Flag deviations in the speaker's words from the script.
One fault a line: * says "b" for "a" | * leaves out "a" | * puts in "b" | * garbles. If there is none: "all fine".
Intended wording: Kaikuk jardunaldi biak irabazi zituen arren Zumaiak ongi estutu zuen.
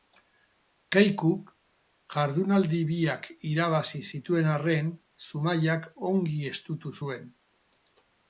all fine